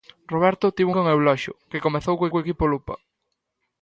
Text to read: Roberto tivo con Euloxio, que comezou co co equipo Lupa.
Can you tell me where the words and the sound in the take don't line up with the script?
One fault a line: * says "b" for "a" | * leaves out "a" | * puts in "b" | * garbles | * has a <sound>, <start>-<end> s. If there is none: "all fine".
all fine